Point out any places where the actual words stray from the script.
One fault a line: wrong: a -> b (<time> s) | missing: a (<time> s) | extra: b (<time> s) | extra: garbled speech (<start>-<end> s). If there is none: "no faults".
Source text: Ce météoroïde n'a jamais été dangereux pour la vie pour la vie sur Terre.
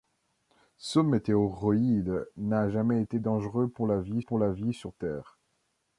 no faults